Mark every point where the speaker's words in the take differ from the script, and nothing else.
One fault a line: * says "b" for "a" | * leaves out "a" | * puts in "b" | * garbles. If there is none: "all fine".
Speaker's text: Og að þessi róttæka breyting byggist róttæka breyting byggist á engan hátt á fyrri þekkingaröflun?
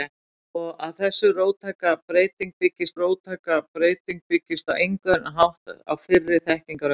all fine